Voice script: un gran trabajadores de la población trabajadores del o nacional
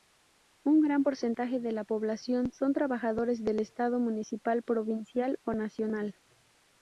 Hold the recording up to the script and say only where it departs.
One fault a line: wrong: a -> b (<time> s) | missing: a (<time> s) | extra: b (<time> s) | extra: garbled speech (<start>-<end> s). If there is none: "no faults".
wrong: trabajadores -> porcentaje (1.0 s)
extra: son (2.5 s)
extra: estado municipal provincial (3.6 s)